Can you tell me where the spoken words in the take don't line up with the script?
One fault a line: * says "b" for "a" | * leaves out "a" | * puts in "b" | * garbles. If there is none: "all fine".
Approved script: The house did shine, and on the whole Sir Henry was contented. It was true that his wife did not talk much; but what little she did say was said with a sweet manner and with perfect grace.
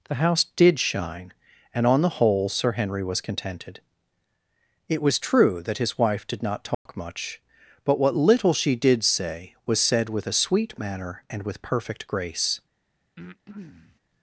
all fine